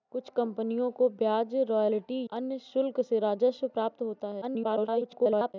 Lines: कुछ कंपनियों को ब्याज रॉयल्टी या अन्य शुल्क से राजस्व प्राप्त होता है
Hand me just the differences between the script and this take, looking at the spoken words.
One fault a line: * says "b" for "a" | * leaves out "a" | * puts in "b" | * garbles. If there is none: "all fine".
* leaves out "या"
* garbles